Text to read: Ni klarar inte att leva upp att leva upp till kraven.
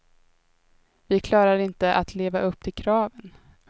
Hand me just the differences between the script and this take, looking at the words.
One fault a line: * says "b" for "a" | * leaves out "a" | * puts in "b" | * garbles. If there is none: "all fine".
* says "Vi" for "Ni"
* leaves out "att leva upp"